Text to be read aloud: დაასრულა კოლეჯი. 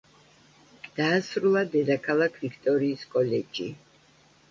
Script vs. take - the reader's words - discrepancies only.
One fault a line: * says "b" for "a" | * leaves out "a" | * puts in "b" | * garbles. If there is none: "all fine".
* puts in "დედაქალაქ ვიქტორიის"